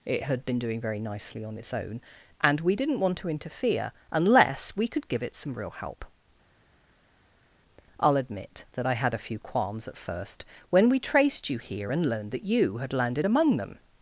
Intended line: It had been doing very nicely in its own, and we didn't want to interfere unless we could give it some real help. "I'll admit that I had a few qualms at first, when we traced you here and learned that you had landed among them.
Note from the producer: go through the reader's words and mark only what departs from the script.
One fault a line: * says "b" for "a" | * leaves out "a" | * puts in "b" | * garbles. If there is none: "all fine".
* says "on" for "in"